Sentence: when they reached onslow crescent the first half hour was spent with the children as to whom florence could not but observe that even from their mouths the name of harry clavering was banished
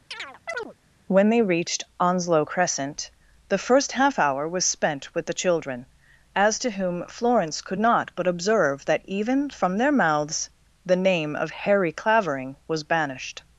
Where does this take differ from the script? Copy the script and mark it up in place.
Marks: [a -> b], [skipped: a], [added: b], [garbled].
when they reached onslow crescent the first half hour was spent with the children as to whom florence could not but observe that even from their mouths the name of harry clavering was banished